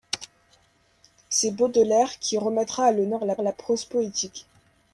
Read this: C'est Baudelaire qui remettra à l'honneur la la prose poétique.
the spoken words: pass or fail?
pass